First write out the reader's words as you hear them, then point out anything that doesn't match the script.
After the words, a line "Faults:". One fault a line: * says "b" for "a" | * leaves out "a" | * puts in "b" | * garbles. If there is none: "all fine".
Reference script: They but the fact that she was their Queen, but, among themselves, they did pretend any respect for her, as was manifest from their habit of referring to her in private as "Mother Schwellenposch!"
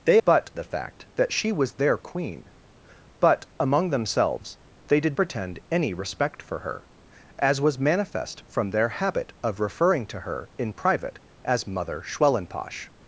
They but the fact that she was their Queen, but, among themselves, they did pretend any respect for her, as was manifest from their habit of referring to her in private as "Mother Schwellenposch!"
Faults:
all fine